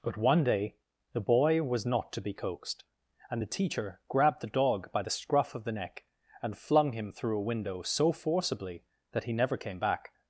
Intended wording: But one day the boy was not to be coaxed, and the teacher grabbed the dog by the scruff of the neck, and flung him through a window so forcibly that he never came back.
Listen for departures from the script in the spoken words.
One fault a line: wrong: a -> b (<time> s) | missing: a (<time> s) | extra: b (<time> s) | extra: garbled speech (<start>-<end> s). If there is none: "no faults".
no faults